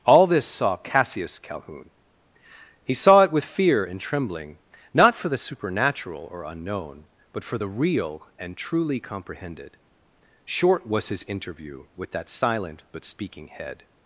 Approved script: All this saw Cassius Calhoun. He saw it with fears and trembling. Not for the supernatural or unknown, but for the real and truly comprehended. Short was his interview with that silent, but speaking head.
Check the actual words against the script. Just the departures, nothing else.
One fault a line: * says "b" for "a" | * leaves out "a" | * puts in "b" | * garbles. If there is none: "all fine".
* says "fear" for "fears"